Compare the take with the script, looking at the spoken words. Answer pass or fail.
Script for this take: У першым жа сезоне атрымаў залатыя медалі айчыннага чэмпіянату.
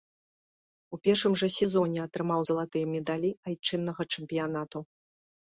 pass